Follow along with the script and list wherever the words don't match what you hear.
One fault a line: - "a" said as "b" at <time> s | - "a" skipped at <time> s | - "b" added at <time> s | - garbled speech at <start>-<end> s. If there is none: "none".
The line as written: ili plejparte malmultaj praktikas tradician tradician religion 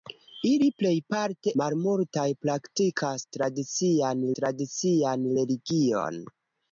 none